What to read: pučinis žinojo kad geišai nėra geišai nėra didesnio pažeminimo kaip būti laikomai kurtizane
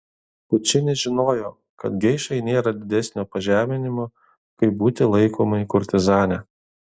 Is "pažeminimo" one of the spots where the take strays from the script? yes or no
no